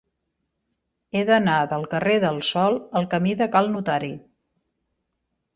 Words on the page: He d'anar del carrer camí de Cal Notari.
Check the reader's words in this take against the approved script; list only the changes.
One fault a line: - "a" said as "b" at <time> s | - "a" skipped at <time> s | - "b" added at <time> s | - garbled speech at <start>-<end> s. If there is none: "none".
- "del Sol al" added at 2.3 s